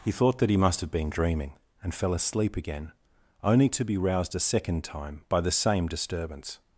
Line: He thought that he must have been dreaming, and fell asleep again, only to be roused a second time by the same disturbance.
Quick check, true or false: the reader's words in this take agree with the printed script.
true